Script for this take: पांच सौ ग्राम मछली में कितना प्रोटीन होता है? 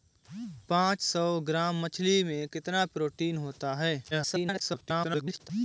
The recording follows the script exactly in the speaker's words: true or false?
false